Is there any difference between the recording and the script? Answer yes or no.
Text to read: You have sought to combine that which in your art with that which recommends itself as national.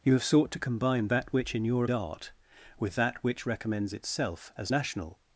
no